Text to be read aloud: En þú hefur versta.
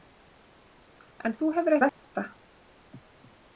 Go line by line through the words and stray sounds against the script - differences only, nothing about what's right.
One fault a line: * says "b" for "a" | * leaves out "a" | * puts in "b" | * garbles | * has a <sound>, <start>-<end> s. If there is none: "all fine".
* has a dropout, 1.9-2.0 s